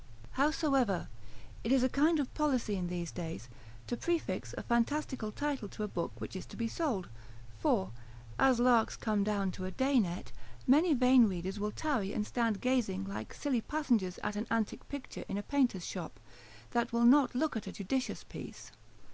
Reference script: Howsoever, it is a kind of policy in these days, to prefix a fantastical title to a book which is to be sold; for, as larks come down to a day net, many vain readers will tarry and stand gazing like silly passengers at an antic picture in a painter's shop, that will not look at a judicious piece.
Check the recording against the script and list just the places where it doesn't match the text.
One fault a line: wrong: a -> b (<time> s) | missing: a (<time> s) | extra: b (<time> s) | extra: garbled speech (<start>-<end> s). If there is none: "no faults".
no faults